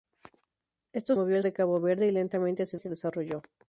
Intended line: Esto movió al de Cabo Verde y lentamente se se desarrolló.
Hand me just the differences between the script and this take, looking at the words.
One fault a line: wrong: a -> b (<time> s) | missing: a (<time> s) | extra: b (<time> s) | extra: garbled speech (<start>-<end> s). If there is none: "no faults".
no faults